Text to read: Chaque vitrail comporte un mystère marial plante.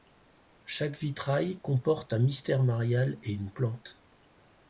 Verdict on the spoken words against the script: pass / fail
fail